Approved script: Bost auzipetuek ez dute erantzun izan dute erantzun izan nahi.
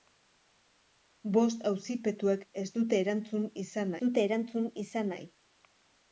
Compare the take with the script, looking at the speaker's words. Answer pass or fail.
pass